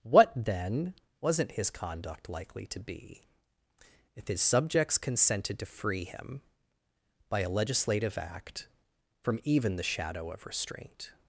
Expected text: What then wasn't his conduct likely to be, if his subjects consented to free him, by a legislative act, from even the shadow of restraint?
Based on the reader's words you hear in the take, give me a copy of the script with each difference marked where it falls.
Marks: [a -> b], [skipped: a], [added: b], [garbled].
What then wasn't his conduct likely to be, if his subjects consented to free him, by a legislative act, from even the shadow of restraint?